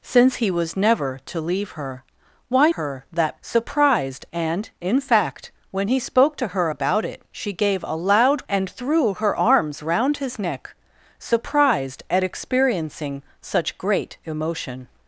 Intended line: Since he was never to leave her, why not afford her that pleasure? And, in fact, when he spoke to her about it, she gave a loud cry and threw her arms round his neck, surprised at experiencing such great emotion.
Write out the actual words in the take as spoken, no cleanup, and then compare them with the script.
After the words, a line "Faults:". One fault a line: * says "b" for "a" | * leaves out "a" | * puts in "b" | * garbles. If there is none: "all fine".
Since he was never to leave her, why her that surprised? And, in fact, when he spoke to her about it, she gave a loud and threw her arms round his neck, surprised at experiencing such great emotion.
Faults:
* leaves out "not afford"
* says "surprised" for "pleasure"
* leaves out "cry"